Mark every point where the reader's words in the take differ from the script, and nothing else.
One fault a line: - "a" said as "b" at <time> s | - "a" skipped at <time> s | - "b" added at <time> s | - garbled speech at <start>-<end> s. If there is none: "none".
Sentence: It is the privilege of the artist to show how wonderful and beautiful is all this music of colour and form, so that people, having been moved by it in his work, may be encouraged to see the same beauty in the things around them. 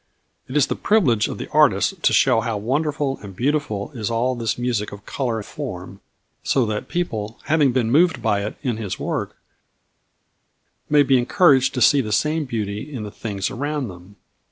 - "and" skipped at 5.4 s